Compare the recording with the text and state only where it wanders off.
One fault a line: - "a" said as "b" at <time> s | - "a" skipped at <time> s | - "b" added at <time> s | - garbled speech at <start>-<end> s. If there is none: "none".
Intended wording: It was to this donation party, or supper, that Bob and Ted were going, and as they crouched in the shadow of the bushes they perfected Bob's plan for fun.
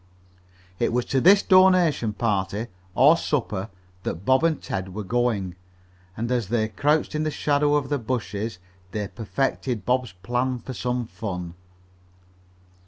- "some" added at 10.8 s